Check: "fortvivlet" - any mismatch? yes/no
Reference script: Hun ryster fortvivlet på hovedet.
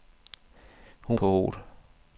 yes